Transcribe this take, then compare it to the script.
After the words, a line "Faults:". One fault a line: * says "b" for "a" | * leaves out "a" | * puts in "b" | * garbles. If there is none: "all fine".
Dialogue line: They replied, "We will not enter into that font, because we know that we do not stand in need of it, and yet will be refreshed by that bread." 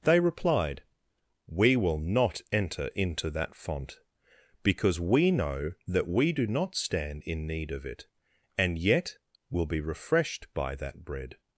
They replied, "We will not enter into that font, because we know that we do not stand in need of it, and yet will be refreshed by that bread."
Faults:
all fine